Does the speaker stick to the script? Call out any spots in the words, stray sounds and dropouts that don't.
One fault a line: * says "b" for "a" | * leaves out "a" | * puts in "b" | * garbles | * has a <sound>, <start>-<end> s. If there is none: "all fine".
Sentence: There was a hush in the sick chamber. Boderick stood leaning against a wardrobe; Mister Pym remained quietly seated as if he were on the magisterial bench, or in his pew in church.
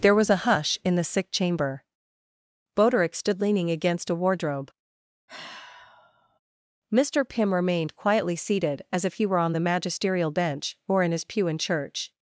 * has a sigh, 5.3-6.4 s